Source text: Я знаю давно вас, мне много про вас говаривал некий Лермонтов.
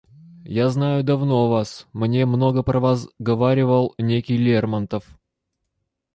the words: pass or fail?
pass